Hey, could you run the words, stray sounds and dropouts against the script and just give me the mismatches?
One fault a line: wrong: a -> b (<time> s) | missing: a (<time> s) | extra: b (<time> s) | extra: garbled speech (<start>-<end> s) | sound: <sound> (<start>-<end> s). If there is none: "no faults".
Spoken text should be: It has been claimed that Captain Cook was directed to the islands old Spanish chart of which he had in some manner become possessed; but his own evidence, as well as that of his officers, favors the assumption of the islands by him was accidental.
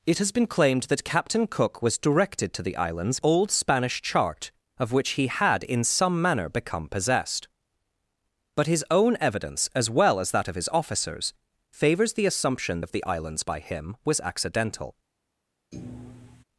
sound: thud (15.7-16.4 s)